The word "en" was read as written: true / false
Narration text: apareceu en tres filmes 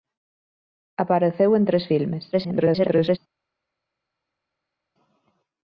true